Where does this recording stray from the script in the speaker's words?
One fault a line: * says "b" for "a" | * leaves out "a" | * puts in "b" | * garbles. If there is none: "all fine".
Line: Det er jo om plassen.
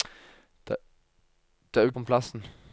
all fine